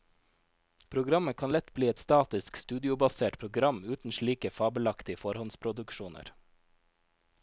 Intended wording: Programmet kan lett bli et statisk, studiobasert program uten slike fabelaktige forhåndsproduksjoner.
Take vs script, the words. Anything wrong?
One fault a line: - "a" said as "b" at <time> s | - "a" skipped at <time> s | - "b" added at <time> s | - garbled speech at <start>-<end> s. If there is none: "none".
none